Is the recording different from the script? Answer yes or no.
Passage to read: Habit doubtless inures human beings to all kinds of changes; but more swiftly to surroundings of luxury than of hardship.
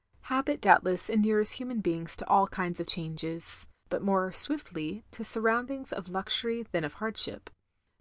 no